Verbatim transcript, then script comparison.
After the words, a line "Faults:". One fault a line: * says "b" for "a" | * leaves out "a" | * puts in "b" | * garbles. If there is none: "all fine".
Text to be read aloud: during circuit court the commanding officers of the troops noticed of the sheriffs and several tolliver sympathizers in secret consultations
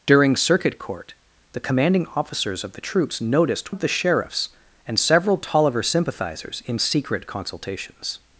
during circuit court the commanding officers of the troops noticed of the sheriffs and several tolliver sympathizers in secret consultations
Faults:
all fine